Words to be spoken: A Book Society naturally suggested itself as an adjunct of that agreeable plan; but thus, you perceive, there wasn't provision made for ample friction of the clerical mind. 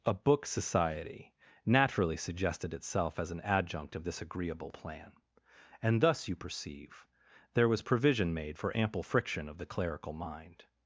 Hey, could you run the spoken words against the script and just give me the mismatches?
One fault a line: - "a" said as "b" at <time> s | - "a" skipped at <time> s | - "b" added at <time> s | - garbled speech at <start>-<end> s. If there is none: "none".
- "that" said as "this" at 4.0 s
- "but" said as "and" at 5.8 s
- "wasn't" said as "was" at 7.7 s